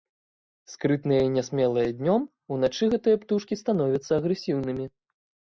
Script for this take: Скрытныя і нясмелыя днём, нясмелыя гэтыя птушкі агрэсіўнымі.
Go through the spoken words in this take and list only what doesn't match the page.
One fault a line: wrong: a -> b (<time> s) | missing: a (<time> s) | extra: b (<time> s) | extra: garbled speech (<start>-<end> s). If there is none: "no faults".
wrong: нясмелыя -> уначы (2.6 s)
extra: становяцца (3.7 s)